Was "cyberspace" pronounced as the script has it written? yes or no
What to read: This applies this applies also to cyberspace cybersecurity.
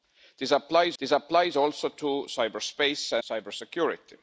yes